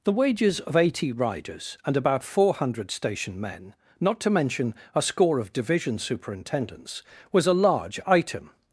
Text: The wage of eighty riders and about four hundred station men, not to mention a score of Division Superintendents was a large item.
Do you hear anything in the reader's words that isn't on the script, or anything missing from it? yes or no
yes